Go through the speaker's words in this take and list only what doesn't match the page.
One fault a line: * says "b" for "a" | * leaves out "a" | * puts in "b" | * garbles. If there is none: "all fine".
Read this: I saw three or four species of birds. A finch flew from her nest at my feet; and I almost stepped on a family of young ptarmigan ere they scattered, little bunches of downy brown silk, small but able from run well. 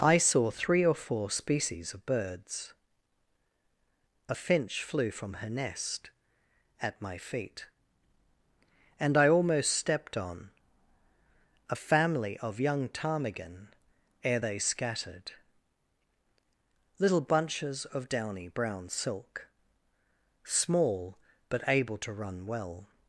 * says "to" for "from"